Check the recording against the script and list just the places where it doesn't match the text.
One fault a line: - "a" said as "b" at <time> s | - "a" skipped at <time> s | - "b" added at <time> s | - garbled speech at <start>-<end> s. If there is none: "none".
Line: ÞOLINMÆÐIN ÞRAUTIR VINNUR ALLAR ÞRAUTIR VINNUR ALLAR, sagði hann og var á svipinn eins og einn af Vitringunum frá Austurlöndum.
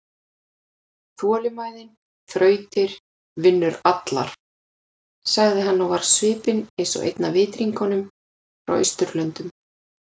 - "ÞRAUTIR VINNUR ALLAR" skipped at 4.3 s